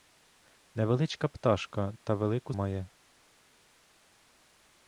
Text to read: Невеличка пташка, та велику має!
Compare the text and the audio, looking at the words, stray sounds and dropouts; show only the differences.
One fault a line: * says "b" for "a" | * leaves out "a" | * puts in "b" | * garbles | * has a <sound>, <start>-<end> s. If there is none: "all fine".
all fine